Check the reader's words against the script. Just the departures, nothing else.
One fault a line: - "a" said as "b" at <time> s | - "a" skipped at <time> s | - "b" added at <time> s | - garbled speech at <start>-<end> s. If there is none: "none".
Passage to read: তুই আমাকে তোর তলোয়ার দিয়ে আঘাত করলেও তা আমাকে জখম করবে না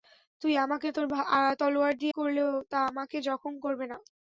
- "আঘাত" skipped at 2.1 s